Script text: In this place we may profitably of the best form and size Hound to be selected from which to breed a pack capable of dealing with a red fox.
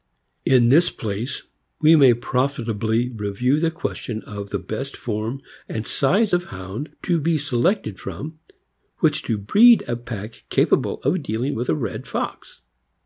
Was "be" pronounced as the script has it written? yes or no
yes